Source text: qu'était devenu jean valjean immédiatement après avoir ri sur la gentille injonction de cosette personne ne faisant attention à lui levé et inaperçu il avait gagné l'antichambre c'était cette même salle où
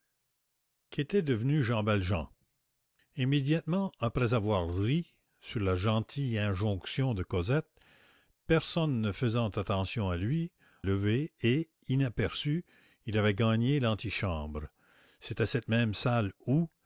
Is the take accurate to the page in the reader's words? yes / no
yes